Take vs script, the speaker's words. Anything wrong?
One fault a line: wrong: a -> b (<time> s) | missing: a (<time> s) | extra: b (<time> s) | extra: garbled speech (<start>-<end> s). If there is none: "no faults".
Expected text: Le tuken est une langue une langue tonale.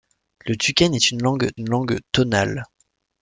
no faults